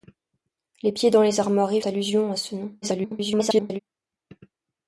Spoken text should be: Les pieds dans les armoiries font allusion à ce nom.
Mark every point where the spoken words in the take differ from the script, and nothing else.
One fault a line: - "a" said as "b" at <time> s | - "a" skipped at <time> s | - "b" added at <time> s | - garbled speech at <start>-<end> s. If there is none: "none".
- "font" skipped at 1.8 s
- garbled speech at 2.8-3.8 s